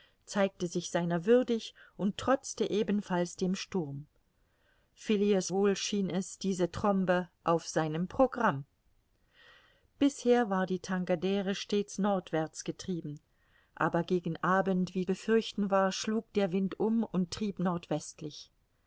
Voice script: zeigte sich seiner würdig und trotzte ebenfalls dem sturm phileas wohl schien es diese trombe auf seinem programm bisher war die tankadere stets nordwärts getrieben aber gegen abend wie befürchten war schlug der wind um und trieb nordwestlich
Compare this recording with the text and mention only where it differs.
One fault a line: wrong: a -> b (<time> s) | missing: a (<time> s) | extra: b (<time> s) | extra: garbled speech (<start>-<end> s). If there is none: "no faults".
no faults